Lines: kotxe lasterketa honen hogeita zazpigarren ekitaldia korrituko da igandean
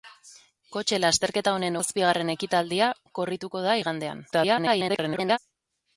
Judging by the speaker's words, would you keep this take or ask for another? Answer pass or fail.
fail